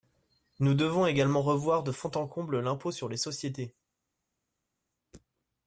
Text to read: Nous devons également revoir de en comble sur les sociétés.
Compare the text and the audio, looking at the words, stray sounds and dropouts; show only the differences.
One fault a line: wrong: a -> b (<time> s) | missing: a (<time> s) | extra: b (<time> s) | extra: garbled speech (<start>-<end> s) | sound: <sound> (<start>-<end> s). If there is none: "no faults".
extra: fond (1.9 s)
extra: l'impôt (2.6 s)